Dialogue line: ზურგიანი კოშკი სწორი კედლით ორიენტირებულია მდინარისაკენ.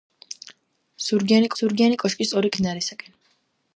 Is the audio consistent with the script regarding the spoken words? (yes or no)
no